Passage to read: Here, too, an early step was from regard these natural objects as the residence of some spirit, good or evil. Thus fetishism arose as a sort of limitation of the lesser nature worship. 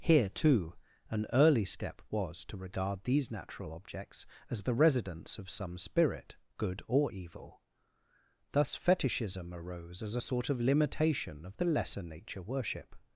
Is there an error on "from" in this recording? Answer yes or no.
yes